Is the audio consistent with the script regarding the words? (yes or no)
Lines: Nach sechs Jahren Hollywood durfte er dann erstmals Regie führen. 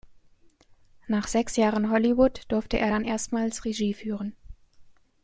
yes